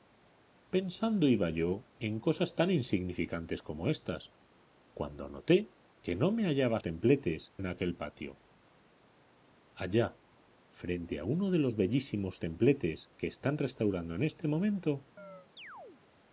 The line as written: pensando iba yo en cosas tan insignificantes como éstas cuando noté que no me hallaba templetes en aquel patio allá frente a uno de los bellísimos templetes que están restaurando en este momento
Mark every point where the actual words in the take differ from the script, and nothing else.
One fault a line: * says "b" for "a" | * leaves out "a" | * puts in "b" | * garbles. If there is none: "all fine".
all fine